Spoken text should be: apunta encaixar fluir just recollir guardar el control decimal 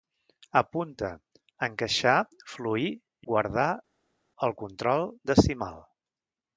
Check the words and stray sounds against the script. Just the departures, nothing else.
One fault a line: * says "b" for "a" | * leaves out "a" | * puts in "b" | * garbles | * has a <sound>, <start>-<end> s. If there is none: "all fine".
* leaves out "just recollir"